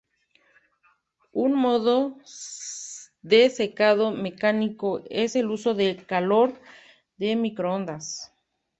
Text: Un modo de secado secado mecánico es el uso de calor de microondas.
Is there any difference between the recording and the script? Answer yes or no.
yes